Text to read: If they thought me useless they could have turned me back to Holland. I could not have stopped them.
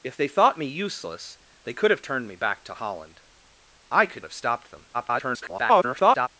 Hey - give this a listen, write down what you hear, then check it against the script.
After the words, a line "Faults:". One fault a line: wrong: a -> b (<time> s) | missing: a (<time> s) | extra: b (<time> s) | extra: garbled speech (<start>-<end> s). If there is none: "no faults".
If they thought me useless they could have turned me back to Holland. I could have stopped them. [garbled]
Faults:
missing: not (4.2 s)
extra: garbled speech (4.9-6.3 s)